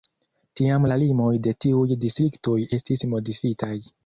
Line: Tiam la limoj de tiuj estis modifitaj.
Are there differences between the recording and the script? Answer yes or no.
yes